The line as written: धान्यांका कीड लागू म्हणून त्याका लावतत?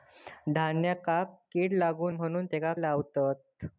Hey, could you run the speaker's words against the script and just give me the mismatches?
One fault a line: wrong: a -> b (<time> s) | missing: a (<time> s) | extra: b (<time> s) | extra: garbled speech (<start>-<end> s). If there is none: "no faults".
no faults